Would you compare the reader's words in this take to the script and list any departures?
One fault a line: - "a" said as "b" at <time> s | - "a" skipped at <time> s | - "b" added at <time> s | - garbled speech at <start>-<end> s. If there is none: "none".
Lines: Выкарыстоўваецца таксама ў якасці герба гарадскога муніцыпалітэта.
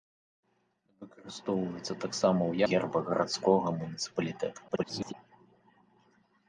- "якасці" skipped at 2.5 s
- garbled speech at 4.7-5.1 s